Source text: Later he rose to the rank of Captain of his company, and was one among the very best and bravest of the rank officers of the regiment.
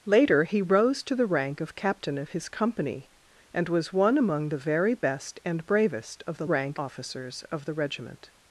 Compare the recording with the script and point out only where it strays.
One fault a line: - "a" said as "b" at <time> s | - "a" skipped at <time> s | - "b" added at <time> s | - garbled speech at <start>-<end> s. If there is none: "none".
none